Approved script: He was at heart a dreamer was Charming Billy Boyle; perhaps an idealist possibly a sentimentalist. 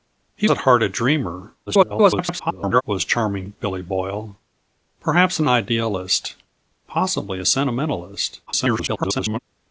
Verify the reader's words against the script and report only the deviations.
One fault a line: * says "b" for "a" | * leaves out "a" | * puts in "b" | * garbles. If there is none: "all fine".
* leaves out "was"
* garbles
* garbles